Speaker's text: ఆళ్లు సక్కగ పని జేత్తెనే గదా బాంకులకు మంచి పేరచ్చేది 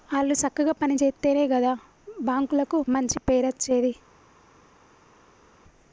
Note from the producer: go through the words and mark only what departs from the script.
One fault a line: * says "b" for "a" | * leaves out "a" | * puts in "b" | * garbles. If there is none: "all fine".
all fine